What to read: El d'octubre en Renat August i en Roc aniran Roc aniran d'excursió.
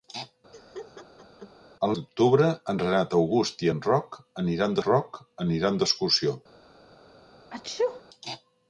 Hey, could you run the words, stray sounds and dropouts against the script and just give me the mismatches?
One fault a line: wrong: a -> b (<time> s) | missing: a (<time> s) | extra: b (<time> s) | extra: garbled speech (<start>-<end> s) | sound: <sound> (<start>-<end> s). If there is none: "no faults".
sound: laugh (0.5-1.5 s)
sound: sneeze (7.5-8.0 s)